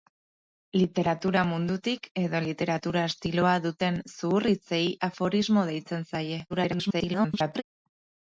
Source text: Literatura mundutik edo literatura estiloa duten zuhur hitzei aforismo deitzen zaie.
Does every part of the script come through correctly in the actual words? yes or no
no